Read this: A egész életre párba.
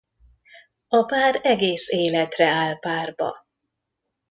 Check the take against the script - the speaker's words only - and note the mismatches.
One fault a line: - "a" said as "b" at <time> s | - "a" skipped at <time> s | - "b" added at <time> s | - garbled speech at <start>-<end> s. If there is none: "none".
- "pár" added at 1.1 s
- "áll" added at 2.5 s